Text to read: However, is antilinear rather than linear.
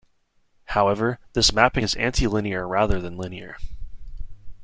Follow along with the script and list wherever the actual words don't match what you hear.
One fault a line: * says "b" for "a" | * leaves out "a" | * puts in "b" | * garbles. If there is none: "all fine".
* puts in "this mapping"